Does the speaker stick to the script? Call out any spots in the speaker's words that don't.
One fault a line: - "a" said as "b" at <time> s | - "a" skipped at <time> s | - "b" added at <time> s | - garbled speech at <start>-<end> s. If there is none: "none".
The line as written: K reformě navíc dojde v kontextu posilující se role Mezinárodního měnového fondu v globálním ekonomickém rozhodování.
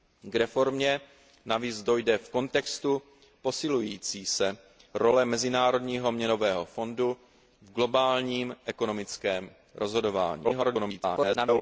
- garbled speech at 10.4-11.6 s